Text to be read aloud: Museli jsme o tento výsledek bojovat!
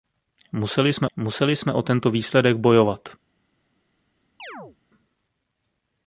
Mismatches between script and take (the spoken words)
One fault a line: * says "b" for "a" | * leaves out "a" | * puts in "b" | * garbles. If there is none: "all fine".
* puts in "museli jsme"